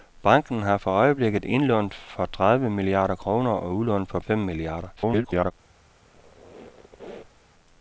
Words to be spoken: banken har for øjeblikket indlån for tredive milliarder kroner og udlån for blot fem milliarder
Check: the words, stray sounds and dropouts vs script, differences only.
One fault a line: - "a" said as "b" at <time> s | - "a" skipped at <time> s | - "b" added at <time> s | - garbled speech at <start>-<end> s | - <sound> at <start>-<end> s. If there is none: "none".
- "blot" skipped at 4.2 s
- garbled speech at 5.0-5.5 s
- squeak at 6.0-7.4 s